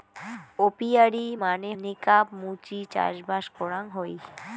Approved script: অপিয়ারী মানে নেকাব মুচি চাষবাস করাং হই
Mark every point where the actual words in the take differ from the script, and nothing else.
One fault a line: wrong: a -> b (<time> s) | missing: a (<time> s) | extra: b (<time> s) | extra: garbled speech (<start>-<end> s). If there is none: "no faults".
no faults